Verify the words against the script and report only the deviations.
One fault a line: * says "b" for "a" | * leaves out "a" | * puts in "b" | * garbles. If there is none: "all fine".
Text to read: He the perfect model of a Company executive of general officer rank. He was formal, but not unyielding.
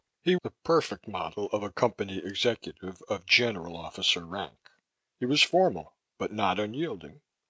all fine